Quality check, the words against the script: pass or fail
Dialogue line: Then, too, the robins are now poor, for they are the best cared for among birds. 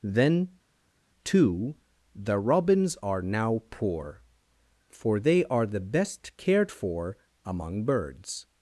pass